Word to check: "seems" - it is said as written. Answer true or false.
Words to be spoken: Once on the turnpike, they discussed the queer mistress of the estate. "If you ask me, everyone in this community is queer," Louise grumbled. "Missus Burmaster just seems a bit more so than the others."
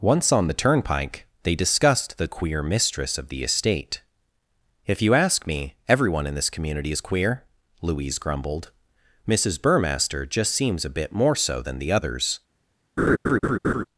true